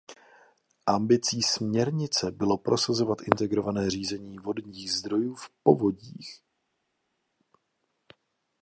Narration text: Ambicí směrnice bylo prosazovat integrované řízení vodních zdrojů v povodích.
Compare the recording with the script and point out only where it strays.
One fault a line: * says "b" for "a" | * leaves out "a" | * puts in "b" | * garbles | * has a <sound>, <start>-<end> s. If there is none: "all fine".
all fine